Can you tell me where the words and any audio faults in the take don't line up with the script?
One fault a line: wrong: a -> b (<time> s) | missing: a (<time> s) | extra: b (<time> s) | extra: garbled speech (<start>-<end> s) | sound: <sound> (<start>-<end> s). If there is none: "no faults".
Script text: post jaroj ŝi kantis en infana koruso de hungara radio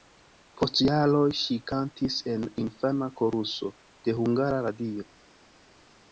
no faults